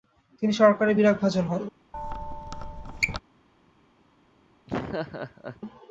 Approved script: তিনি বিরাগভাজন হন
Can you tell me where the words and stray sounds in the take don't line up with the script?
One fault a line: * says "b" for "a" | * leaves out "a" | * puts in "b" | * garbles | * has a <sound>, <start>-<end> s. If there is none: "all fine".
* puts in "সরকারের"
* has a squeak, 1.9-3.2 s
* has a laugh, 4.7-5.6 s